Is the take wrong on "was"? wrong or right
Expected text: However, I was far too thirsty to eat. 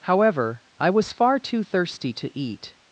right